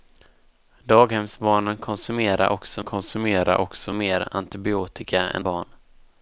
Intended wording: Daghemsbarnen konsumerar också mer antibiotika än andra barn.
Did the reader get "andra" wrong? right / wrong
wrong